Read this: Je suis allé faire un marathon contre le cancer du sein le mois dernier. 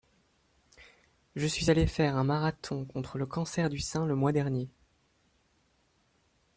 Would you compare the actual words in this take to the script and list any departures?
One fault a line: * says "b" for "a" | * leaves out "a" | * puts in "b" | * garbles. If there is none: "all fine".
all fine